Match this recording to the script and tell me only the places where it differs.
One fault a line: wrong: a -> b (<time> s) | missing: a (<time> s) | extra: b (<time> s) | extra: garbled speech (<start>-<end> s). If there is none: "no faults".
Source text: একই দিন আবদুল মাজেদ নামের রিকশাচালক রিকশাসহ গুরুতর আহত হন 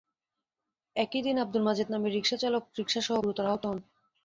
no faults